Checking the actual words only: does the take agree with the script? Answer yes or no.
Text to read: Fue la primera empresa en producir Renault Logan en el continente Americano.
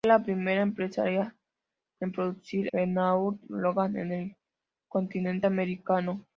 yes